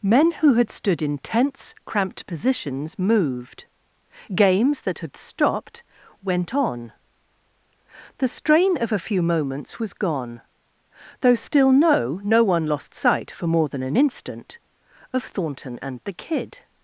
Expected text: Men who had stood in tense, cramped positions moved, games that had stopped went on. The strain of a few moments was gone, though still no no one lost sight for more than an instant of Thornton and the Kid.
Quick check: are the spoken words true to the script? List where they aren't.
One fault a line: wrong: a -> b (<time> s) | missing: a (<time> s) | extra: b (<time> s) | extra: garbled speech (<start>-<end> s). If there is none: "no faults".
no faults